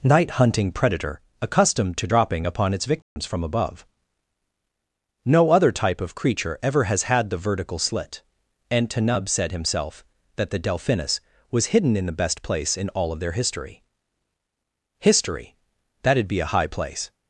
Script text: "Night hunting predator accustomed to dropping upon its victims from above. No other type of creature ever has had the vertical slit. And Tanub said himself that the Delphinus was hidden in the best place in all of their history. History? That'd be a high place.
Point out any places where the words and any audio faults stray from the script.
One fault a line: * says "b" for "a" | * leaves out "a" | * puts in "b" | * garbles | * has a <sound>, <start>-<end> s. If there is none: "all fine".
* has a dropout, 3.0-3.2 s